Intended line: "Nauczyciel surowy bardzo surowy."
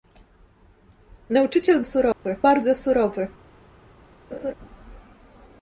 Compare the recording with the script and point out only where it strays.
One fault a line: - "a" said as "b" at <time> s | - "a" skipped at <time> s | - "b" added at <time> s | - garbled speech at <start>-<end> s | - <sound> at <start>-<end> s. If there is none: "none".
- dropout at 2.1-2.3 s
- laugh at 4.3-4.5 s